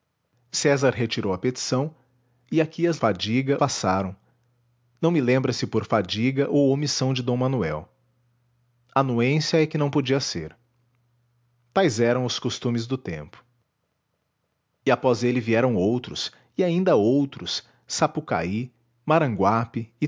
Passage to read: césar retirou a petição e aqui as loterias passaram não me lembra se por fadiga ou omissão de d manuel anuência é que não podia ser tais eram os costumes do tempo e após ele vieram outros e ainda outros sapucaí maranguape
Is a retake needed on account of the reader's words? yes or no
yes